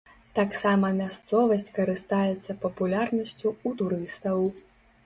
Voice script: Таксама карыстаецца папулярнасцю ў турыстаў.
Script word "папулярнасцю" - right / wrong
right